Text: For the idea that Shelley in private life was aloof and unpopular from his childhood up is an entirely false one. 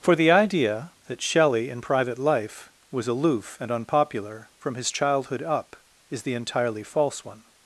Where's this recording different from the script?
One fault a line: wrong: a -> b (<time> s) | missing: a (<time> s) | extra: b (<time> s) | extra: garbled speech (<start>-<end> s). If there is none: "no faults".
wrong: an -> the (6.2 s)